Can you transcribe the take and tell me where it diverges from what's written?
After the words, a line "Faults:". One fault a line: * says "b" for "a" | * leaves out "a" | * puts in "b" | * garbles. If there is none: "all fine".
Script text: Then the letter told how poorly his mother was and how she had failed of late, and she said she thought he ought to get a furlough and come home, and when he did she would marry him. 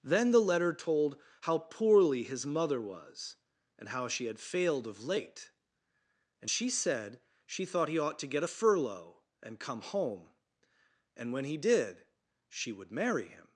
Then the letter told how poorly his mother was and how she had failed of late, and she said she thought he ought to get a furlough and come home, and when he did she would marry him.
Faults:
all fine